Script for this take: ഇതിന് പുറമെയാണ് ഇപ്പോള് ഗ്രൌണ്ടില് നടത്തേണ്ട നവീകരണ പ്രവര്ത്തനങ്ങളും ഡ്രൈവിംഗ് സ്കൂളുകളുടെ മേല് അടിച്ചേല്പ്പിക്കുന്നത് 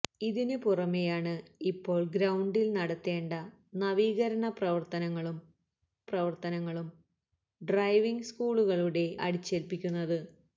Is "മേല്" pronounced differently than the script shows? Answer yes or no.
yes